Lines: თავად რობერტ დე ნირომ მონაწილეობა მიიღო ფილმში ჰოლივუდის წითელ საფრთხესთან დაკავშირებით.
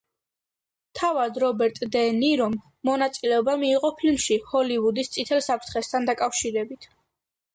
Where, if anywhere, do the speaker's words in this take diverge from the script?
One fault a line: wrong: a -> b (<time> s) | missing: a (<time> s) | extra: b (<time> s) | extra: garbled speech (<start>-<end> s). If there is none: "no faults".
no faults